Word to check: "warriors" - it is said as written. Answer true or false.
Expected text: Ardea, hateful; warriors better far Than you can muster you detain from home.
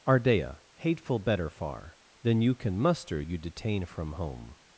false